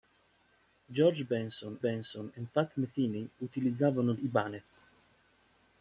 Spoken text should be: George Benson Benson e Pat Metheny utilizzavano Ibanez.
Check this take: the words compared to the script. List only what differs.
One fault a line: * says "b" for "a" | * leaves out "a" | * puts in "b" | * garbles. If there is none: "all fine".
all fine